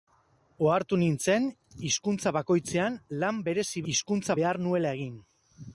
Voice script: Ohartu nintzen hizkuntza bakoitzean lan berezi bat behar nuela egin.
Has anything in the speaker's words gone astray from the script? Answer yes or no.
yes